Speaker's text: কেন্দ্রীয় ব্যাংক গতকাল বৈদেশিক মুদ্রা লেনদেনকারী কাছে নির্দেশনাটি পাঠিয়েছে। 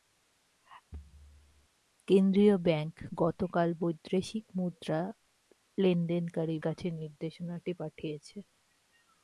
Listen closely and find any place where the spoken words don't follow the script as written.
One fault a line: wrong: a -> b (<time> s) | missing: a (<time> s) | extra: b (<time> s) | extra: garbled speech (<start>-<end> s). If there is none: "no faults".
no faults